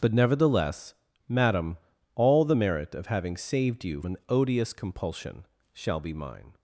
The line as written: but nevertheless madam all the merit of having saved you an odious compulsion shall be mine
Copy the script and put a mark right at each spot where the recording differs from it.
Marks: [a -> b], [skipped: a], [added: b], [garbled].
but nevertheless madam all the merit of having saved you an odious compulsion shall be mine